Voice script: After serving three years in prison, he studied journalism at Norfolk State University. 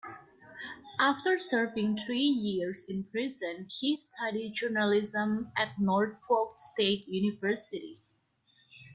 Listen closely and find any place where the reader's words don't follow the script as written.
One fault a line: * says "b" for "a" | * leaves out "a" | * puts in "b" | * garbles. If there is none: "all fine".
all fine